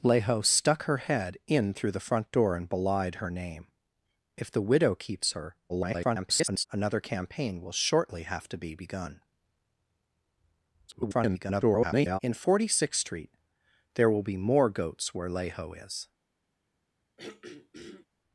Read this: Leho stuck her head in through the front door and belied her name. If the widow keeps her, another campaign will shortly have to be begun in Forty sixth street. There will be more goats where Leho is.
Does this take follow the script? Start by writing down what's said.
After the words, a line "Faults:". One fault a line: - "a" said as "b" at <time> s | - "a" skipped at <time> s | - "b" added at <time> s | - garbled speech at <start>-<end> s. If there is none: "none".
Leho stuck her head in through the front door and belied her name. If the widow keeps her, [garbled] another campaign will shortly have to be begun [garbled] in Forty sixth street. There will be more goats where Leho is.
Faults:
- garbled speech at 5.7-6.7 s
- garbled speech at 10.9-12.2 s